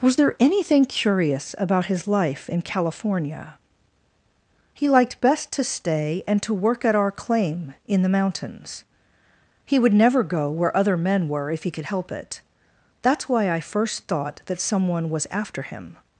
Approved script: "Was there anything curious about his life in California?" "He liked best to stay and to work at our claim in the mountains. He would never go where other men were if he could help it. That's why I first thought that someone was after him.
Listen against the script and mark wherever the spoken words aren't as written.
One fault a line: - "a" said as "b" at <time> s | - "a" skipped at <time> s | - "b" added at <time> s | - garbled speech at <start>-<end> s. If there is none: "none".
none